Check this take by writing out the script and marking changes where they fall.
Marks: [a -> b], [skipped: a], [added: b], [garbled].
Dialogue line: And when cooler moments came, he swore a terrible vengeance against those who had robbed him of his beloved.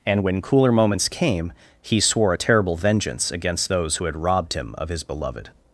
And when cooler moments came, he swore a terrible vengeance against those who had robbed him of his beloved.